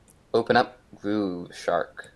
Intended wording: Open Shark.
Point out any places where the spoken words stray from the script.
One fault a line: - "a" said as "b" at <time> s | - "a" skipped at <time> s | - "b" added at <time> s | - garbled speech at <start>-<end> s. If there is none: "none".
- "up Groove" added at 0.6 s